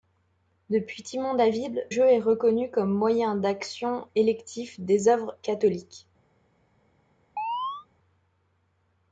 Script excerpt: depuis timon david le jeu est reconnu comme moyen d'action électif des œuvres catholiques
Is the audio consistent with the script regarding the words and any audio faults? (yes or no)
no